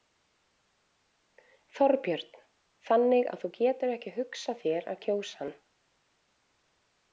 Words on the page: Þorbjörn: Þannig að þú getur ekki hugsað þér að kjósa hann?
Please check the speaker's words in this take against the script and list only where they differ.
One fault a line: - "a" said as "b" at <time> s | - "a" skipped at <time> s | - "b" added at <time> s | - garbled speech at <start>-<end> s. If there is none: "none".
none